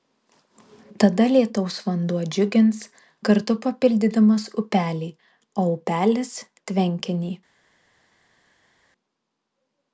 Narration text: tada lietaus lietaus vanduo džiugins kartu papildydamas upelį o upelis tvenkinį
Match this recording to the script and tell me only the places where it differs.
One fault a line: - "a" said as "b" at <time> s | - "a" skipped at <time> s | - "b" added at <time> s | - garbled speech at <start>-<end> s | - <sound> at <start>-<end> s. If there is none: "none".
- "lietaus" skipped at 1.8 s